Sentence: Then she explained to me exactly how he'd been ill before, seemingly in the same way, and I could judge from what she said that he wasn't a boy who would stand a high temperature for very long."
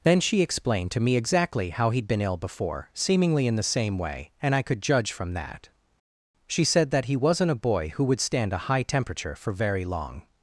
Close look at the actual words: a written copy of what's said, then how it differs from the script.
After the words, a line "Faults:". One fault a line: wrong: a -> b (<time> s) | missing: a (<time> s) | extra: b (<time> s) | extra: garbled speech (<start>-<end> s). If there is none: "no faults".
Then she explained to me exactly how he'd been ill before, seemingly in the same way, and I could judge from that she said that he wasn't a boy who would stand a high temperature for very long."
Faults:
wrong: what -> that (5.3 s)